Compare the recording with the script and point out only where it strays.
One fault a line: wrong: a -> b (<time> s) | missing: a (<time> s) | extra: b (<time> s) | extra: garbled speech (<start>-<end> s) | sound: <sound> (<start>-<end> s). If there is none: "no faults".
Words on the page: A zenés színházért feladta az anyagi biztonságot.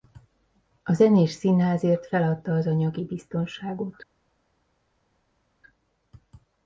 no faults